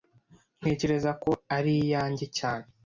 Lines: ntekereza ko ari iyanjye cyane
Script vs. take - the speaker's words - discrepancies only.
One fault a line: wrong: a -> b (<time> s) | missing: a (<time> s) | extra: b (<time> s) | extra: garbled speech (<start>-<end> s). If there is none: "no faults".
no faults